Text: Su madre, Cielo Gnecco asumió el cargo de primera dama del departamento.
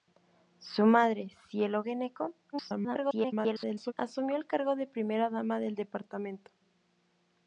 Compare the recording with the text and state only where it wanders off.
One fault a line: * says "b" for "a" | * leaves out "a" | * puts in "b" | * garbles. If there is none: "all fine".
* garbles